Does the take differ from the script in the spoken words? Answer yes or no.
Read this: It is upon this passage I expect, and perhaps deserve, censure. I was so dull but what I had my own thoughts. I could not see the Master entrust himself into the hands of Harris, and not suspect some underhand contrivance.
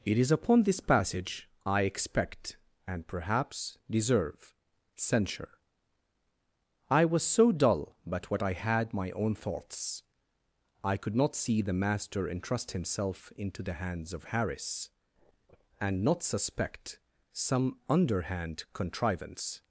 no